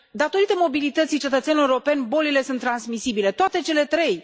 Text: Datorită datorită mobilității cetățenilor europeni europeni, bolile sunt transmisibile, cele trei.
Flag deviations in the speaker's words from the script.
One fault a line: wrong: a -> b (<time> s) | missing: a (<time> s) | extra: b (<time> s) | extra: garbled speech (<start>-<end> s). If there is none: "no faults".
missing: datorită (0.5 s)
missing: europeni (2.1 s)
extra: toate (3.3 s)